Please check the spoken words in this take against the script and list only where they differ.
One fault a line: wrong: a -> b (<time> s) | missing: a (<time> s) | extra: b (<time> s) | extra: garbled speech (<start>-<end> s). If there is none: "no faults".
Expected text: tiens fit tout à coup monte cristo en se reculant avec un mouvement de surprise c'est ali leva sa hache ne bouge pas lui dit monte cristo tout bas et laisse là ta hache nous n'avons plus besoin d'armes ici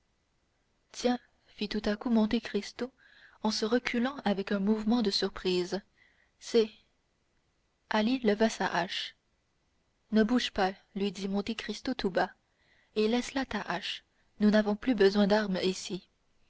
no faults